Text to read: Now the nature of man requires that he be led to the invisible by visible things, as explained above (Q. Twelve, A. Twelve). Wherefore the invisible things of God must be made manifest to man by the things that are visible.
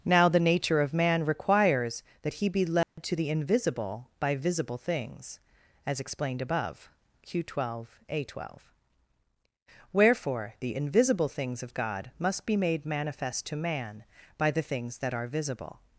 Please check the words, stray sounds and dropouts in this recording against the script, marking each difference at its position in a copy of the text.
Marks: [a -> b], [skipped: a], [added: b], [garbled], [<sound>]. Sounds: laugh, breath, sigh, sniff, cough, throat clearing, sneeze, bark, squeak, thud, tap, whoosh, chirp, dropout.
Now the nature of man requires that he be led [dropout] to the invisible by visible things, as explained above (Q. Twelve, A. Twelve). Wherefore the invisible things of God must be made manifest to man by the things that are visible.